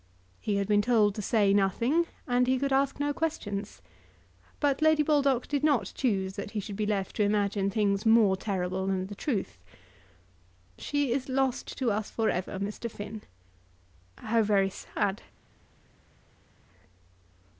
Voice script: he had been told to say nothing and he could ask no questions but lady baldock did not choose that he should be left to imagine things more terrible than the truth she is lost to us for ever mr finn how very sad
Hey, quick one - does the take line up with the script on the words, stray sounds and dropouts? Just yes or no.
yes